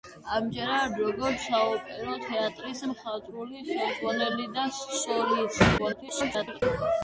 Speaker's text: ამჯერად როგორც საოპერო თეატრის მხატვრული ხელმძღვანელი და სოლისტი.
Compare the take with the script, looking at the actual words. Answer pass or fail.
fail